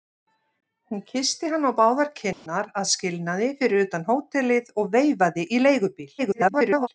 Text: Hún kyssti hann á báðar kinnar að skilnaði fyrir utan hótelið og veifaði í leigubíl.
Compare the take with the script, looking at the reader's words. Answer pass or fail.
fail